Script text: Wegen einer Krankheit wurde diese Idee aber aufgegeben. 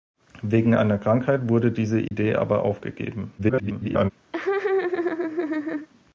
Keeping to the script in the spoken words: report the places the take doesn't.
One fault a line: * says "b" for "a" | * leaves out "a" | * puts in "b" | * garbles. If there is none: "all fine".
* garbles